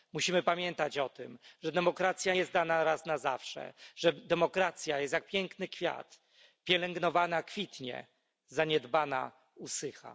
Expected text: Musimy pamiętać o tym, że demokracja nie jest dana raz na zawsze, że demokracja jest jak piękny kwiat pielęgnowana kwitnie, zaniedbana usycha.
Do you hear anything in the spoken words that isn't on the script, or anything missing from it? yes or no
yes